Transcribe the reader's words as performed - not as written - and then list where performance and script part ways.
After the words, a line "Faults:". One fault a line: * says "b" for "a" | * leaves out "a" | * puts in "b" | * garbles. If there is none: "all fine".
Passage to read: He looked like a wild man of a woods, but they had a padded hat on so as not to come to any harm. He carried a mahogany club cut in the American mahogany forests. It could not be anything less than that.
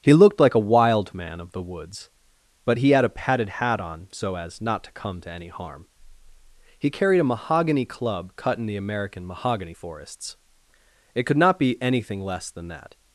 He looked like a wild man of the woods, but he had a padded hat on so as not to come to any harm. He carried a mahogany club cut in the American mahogany forests. It could not be anything less than that.
Faults:
* says "the" for "a"
* says "he" for "they"